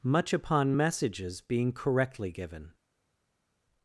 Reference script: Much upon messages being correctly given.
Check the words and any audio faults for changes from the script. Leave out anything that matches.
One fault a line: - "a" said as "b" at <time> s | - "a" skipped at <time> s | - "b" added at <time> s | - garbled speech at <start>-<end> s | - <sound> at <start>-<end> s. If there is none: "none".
none